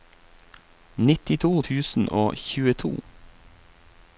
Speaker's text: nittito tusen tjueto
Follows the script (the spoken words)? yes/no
no